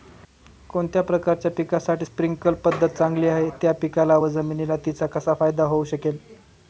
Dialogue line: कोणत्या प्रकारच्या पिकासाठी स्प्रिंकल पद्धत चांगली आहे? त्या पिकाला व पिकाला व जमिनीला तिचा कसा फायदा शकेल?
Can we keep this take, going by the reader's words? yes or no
no